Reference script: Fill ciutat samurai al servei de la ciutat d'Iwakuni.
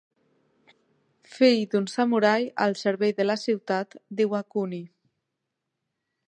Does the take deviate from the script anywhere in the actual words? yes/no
yes